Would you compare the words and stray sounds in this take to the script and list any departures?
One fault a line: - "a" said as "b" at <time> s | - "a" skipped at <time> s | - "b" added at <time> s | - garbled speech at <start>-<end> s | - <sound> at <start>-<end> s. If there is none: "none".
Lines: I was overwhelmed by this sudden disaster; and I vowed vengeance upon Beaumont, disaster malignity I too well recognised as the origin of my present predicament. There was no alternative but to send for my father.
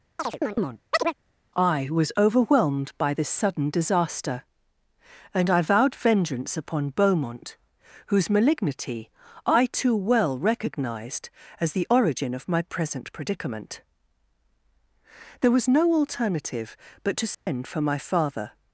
- chirp at 0.2-1.1 s
- "disaster" said as "whose" at 8.1 s
- dropout at 17.3-17.5 s